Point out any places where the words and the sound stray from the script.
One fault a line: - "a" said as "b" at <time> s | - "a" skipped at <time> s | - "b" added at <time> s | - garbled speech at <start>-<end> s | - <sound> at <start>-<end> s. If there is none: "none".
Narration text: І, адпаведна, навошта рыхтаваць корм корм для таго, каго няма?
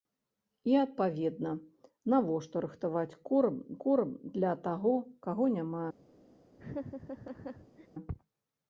- laugh at 6.6-7.9 s